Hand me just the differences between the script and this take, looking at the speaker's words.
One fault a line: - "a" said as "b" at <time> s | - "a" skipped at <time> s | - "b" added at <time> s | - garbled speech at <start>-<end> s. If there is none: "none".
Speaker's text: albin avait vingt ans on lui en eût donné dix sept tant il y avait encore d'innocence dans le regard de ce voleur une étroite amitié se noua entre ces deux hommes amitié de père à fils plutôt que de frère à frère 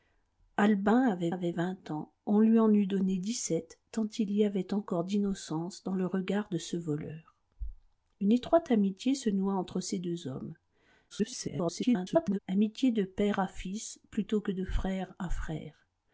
- "avait" added at 1.3 s
- garbled speech at 11.1-12.4 s